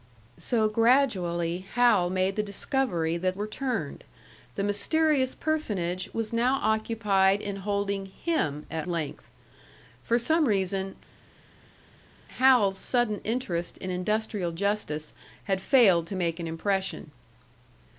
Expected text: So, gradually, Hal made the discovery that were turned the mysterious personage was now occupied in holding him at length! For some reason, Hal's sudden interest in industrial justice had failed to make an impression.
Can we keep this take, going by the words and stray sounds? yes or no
yes